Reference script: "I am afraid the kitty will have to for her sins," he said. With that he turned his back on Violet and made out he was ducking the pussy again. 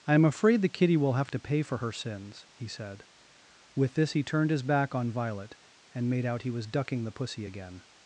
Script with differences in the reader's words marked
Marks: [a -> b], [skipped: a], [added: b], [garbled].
"I am afraid the kitty will have to [added: pay] for her sins," he said. With [that -> this] he turned his back on Violet and made out he was ducking the pussy again.